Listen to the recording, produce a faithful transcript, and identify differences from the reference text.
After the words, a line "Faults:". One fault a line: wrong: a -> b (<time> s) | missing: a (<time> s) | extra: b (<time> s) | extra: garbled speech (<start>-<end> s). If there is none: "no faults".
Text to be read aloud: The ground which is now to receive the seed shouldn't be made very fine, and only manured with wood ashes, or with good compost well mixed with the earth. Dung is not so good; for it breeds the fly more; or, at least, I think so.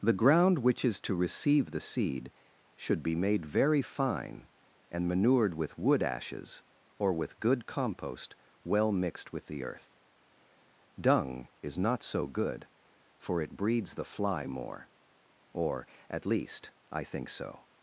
The ground which is to receive the seed should be made very fine, and manured with wood ashes, or with good compost well mixed with the earth. Dung is not so good; for it breeds the fly more; or, at least, I think so.
Faults:
missing: now (1.0 s)
wrong: shouldn't -> should (2.8 s)
missing: only (5.1 s)